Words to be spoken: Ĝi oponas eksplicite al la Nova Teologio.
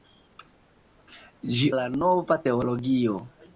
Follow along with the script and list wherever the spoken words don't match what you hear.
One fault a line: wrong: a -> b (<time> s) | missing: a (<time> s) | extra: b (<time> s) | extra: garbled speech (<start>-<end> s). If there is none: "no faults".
missing: oponas eksplicite al (1.7 s)